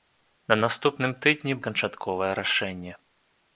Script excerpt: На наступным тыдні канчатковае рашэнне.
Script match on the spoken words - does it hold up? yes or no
yes